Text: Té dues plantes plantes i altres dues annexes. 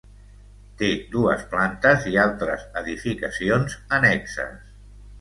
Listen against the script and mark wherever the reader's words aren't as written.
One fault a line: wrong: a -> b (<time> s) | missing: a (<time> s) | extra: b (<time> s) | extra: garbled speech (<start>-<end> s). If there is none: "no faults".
missing: plantes (2.1 s)
wrong: dues -> edificacions (2.9 s)